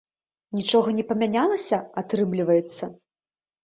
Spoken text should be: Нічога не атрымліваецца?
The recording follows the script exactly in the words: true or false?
false